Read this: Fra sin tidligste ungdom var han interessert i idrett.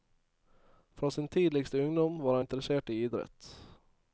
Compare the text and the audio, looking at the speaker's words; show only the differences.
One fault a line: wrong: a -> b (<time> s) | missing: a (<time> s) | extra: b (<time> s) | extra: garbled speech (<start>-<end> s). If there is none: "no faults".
missing: han (2.4 s)